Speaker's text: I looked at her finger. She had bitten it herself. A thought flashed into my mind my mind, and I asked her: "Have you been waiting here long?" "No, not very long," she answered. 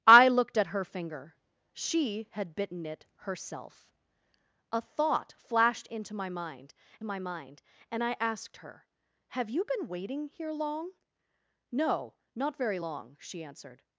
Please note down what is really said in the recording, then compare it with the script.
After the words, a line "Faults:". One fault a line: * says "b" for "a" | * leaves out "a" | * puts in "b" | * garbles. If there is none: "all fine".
I looked at her finger. She had bitten it herself. A thought flashed into my mind my mind, and I asked her: "Have you been waiting here long?" "No, not very long," she answered.
Faults:
all fine